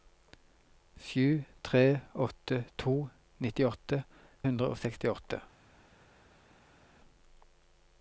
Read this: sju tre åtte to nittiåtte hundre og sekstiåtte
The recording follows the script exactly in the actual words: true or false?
true